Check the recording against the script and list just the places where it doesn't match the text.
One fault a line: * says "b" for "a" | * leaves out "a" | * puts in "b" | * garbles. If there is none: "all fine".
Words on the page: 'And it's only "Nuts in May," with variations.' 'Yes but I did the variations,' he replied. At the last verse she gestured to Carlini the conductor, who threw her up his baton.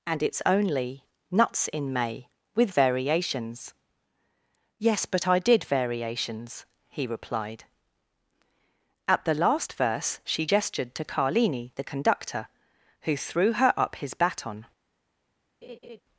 * leaves out "the"